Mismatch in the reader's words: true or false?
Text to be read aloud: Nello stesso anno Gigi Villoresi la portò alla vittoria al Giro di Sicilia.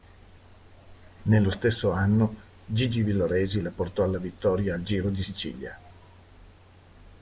false